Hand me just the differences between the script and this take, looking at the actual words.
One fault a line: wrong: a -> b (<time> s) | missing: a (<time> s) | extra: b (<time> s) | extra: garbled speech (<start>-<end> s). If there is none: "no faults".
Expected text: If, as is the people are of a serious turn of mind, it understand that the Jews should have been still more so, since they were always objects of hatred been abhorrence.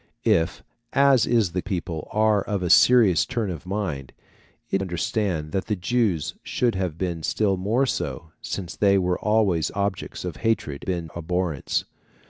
no faults